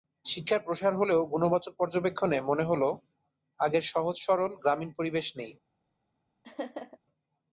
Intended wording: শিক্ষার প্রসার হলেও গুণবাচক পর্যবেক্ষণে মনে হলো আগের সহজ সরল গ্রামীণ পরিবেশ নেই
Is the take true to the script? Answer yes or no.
yes